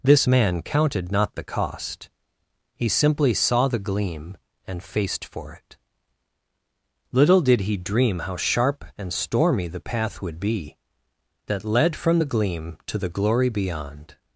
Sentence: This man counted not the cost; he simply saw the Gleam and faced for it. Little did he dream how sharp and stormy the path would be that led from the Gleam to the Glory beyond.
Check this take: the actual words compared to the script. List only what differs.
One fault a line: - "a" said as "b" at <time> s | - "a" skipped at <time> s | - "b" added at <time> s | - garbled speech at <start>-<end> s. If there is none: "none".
none